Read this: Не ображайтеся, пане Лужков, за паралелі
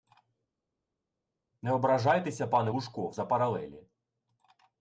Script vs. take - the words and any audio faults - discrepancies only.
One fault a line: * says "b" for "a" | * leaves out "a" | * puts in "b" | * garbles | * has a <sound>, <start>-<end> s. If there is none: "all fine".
all fine